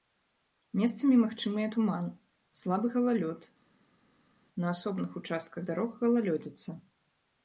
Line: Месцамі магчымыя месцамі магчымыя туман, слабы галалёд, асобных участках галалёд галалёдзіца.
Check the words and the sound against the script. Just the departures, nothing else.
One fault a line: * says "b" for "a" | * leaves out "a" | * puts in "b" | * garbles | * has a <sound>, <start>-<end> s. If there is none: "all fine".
* leaves out "месцамі магчымыя"
* puts in "на"
* says "дарог" for "галалёд"